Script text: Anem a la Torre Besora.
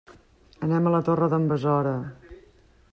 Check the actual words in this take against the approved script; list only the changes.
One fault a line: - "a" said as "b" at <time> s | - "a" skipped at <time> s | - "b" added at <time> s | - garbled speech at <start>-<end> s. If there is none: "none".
- "d'en" added at 1.4 s